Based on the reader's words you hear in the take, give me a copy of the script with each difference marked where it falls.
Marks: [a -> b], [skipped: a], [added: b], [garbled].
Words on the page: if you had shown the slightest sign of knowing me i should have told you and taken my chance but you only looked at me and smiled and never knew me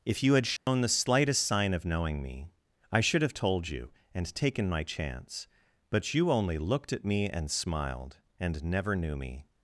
if you had shown the slightest sign of knowing me i should have told you and taken my chance but you only looked at me and smiled and never knew me